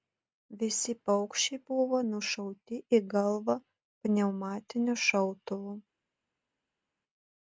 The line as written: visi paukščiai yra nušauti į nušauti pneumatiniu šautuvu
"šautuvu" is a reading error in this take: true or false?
false